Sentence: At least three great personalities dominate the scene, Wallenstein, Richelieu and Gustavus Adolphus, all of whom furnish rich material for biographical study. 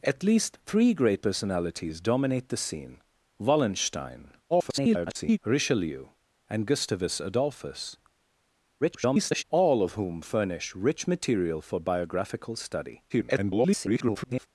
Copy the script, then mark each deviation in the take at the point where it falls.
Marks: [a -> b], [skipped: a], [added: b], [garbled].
At least three great personalities dominate the scene, Wallenstein, [garbled] Richelieu and Gustavus Adolphus, [garbled] all of whom furnish rich material for biographical study. [garbled]